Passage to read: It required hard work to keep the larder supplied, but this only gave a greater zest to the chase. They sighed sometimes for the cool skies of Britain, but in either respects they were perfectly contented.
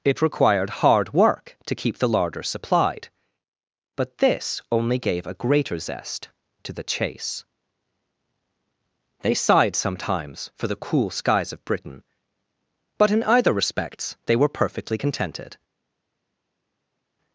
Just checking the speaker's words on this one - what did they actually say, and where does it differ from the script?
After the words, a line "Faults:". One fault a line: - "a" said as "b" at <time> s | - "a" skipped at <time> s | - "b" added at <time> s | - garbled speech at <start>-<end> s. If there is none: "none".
It required hard work to keep the larder supplied, but this only gave a greater zest to the chase. They sighed sometimes for the cool skies of Britain, but in either respects they were perfectly contented.
Faults:
none